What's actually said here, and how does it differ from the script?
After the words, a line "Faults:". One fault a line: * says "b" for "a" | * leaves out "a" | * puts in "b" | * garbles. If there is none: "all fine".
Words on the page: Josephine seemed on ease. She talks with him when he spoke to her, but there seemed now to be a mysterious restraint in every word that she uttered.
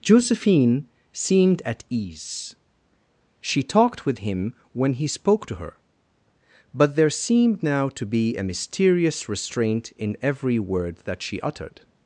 Josephine seemed at ease. She talked with him when he spoke to her, but there seemed now to be a mysterious restraint in every word that she uttered.
Faults:
* says "at" for "on"
* says "talked" for "talks"